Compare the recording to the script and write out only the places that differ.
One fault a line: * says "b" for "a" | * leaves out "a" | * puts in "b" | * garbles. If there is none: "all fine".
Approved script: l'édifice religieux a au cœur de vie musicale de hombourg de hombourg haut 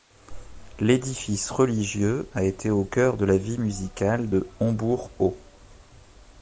* puts in "été"
* puts in "la"
* leaves out "de hombourg"